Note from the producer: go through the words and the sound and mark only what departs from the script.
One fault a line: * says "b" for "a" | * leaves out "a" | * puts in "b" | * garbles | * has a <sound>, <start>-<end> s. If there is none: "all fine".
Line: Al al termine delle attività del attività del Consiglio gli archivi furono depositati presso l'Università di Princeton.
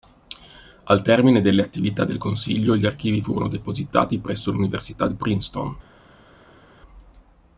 * leaves out "al"
* leaves out "attività del"